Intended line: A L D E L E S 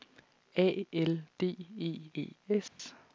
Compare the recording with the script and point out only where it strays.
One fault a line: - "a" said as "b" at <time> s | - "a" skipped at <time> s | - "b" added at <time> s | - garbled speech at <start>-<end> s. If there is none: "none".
- "L" skipped at 2.1 s